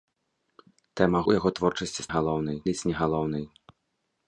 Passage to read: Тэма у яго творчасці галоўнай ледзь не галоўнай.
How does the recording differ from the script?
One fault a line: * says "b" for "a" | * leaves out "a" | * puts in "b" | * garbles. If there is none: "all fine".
all fine